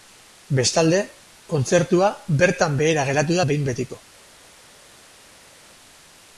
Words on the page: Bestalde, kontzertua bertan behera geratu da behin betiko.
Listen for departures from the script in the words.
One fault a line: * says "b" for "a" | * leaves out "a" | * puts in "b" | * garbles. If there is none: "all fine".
all fine